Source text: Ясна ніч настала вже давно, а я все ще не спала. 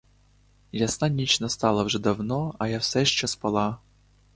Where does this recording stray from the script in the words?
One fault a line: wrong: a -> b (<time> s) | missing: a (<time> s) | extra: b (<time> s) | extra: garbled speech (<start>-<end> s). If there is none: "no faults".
missing: не (3.3 s)